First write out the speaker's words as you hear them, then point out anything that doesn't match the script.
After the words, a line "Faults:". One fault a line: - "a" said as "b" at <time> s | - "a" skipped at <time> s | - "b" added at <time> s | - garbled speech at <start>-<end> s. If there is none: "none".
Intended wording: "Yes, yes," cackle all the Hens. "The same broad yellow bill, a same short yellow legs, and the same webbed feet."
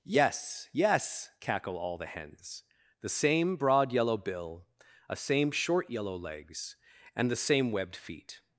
"Yes, yes," cackle all the Hens. "The same broad yellow bill, a same short yellow legs, and the same webbed feet."
Faults:
none